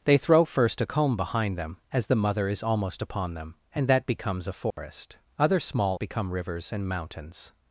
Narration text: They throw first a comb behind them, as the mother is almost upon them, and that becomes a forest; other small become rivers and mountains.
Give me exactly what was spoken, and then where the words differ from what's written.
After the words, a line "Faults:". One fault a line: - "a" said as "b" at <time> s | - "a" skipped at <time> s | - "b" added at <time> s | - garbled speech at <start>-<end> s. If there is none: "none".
They throw first a comb behind them, as the mother is almost upon them, and that becomes a forest; other small become rivers and mountains.
Faults:
none